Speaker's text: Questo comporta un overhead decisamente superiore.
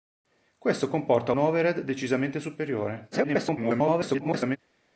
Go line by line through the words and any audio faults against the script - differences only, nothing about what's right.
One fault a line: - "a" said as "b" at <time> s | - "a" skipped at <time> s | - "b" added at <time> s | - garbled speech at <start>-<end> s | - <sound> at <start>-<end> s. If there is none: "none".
- "un" skipped at 1.3 s
- garbled speech at 3.1-4.6 s